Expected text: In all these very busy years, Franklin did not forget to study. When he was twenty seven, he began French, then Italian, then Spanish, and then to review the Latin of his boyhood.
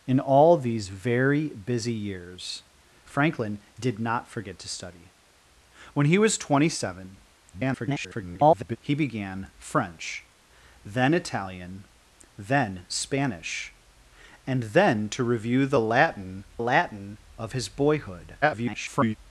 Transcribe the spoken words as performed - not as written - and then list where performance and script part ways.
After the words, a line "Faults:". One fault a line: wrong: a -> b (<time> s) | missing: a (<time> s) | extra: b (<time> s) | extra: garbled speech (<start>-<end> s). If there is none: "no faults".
In all these very busy years, Franklin did not forget to study. When he was twenty seven, [garbled] he began French, then Italian, then Spanish, and then to review the Latin Latin of his boyhood. [garbled]
Faults:
extra: garbled speech (7.5-8.8 s)
extra: Latin (16.6 s)
extra: garbled speech (18.4-19.2 s)